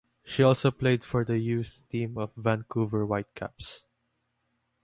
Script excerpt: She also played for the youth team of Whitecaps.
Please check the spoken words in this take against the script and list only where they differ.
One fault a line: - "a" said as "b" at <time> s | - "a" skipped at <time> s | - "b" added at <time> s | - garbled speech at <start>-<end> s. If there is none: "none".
- "Vancouver" added at 2.3 s